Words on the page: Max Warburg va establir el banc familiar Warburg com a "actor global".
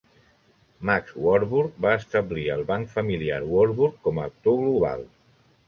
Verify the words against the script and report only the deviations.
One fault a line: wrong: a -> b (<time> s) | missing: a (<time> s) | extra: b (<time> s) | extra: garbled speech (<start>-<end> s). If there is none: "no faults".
no faults